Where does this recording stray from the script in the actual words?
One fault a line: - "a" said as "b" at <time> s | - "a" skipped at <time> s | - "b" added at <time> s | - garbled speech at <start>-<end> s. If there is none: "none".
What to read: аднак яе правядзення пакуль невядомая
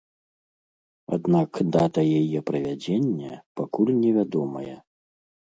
- "дата" added at 1.8 s